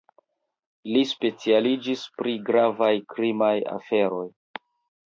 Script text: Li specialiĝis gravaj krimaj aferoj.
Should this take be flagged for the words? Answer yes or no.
yes